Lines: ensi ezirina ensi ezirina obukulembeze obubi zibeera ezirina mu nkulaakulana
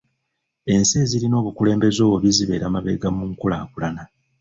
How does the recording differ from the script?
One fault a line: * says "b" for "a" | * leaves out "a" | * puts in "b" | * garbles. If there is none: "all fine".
* leaves out "ensi ezirina"
* says "mabega" for "ezirina"